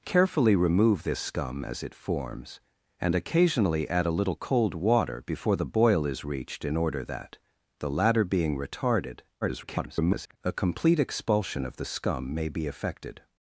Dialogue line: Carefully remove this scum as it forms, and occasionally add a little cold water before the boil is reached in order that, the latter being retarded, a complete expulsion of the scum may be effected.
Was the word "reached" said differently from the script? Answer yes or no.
no